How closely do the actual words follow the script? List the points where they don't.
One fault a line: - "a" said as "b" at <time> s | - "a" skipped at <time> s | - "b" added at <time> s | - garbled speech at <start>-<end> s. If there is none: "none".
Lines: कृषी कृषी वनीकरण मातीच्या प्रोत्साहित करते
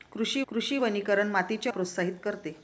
none